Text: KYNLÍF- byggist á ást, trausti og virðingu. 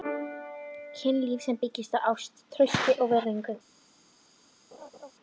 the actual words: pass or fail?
fail